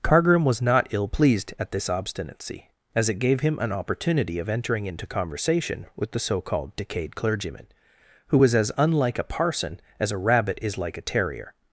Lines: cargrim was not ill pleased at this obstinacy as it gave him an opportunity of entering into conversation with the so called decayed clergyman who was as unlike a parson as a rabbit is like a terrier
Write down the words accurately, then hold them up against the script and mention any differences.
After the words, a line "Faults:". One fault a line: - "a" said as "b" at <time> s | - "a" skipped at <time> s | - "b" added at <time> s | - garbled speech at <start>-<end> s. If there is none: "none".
cargrim was not ill pleased at this obstinacy as it gave him an opportunity of entering into conversation with the so called decayed clergyman who was as unlike a parson as a rabbit is like a terrier
Faults:
none